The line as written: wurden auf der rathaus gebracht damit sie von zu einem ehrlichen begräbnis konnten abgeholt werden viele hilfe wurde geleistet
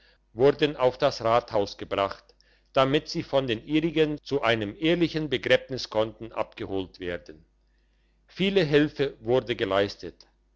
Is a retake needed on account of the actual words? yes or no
yes